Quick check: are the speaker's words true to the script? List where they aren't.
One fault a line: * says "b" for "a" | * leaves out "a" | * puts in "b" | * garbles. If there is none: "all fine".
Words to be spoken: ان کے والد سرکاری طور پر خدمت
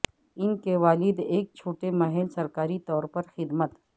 * puts in "ایک چھوٹے محل"